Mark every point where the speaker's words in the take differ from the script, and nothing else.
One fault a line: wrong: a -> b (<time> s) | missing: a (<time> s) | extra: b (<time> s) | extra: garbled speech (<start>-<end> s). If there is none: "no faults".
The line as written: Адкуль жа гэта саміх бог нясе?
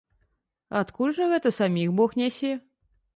no faults